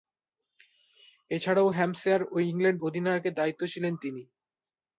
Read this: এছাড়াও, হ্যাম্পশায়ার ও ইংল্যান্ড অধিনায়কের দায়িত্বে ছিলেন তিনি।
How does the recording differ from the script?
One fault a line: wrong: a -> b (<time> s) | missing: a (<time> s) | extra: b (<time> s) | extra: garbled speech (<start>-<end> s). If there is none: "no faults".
no faults